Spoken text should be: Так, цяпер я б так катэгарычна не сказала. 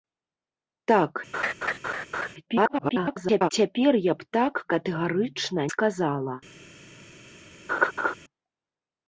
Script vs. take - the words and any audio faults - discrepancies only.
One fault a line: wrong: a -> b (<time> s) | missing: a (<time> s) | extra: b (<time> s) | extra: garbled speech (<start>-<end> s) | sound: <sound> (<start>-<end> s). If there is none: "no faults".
sound: laugh (1.3-2.3 s)
extra: garbled speech (2.5-3.5 s)
missing: не (5.6 s)
sound: laugh (7.7-8.1 s)